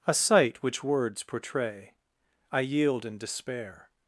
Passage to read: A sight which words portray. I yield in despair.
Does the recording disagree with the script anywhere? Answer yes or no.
no